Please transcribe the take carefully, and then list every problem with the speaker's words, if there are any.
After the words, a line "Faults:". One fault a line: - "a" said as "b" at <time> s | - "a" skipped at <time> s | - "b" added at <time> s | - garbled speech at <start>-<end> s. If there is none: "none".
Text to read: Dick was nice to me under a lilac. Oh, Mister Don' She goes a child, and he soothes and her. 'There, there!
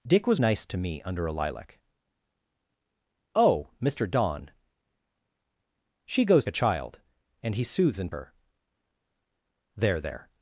Dick was nice to me under a lilac. Oh, Mister Don' She goes a child, and he soothes and her. 'There, there!
Faults:
none